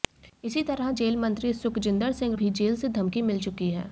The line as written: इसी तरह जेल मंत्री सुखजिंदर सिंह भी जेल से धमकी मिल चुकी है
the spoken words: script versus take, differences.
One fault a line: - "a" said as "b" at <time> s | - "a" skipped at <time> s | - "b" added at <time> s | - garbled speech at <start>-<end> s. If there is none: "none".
none